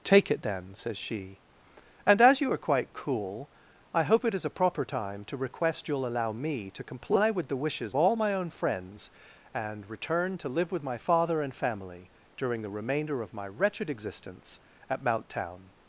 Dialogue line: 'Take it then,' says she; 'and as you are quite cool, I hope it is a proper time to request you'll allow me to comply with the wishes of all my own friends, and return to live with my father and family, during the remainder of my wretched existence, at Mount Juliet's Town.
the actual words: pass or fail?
fail